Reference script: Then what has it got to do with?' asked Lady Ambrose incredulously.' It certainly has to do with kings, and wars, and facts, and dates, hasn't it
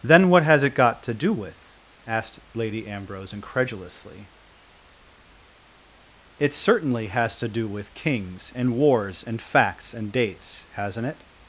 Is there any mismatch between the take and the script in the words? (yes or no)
no